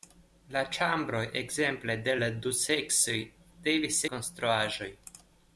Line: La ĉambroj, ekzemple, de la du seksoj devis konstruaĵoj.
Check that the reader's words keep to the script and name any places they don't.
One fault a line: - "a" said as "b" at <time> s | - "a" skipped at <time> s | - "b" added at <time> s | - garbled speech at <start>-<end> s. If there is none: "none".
none